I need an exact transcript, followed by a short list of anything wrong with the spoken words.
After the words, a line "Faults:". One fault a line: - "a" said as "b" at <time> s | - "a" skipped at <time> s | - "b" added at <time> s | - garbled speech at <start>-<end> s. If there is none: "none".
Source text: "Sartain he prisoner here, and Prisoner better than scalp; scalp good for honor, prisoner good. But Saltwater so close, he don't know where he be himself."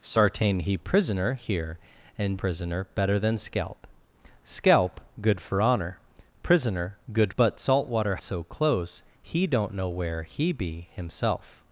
"Sartain he prisoner here, and Prisoner better than scalp; scalp good for honor, prisoner good. But Saltwater so close, he don't know where he be himself."
Faults:
none